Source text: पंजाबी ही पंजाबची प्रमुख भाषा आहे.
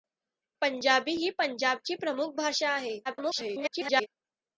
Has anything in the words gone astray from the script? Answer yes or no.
yes